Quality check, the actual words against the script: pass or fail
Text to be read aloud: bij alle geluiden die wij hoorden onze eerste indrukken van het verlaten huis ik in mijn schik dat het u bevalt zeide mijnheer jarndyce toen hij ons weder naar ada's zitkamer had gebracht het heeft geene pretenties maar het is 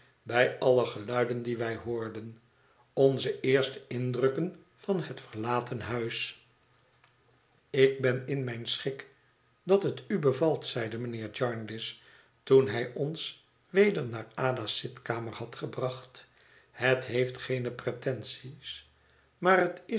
fail